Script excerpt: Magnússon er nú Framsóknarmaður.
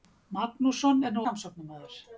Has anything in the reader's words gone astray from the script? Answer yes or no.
no